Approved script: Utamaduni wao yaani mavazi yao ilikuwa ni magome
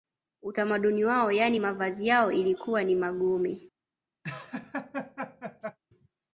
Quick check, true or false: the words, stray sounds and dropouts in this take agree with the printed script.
false